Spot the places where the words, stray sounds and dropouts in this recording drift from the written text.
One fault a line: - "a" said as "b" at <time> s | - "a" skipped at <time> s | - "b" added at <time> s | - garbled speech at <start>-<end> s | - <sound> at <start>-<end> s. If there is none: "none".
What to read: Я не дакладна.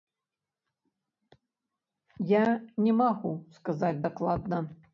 - "магу сказаць" added at 3.0 s